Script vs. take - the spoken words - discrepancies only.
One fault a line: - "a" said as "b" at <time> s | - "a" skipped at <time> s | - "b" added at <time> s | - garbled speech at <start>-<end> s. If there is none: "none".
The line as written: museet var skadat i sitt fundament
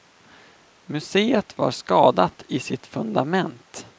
none